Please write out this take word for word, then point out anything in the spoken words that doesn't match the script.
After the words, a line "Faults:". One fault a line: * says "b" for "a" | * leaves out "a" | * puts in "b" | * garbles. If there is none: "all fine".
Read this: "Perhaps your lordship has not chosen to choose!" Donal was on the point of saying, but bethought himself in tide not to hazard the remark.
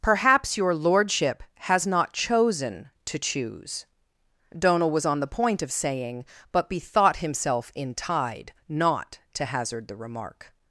"Perhaps your lordship has not chosen to choose!" Donal was on the point of saying, but bethought himself in tide not to hazard the remark.
Faults:
all fine